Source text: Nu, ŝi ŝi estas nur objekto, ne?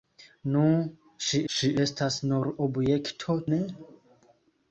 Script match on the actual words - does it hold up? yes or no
yes